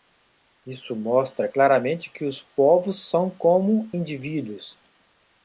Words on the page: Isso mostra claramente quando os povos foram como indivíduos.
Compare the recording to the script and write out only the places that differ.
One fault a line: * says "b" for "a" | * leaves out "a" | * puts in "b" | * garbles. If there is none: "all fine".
* says "que" for "quando"
* says "são" for "foram"